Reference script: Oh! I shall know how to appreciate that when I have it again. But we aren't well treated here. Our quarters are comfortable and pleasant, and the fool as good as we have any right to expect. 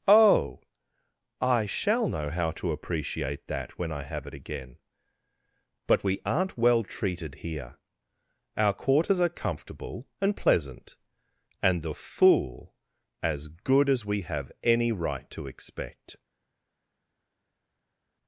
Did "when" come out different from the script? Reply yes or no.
no